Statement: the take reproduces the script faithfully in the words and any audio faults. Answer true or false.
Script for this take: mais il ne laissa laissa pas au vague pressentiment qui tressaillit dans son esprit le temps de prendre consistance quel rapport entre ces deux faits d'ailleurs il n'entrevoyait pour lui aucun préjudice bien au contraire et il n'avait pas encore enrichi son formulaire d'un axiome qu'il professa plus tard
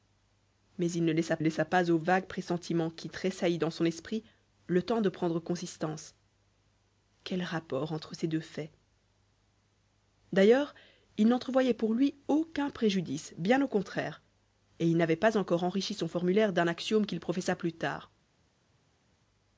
true